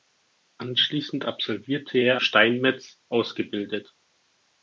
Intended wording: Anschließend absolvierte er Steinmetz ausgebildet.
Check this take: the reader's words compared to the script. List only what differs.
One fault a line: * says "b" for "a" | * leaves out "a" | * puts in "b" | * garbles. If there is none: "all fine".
all fine